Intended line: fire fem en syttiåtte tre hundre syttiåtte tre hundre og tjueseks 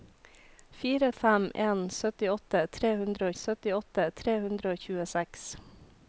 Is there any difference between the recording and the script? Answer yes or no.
no